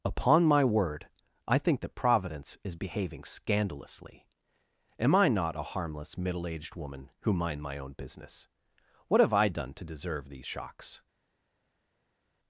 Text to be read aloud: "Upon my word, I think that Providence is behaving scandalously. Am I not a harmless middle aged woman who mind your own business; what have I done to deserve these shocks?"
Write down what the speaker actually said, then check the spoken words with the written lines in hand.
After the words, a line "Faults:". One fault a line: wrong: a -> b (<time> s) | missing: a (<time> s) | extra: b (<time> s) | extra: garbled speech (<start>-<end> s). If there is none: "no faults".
"Upon my word, I think that Providence is behaving scandalously. Am I not a harmless middle aged woman who mind my own business; what have I done to deserve these shocks?"
Faults:
wrong: your -> my (7.6 s)